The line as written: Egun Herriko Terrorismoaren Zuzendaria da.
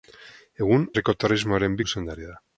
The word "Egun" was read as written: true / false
true